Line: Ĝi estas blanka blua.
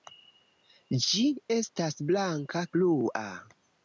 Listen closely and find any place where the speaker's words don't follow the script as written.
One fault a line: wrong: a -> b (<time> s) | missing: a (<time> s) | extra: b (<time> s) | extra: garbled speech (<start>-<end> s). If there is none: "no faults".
no faults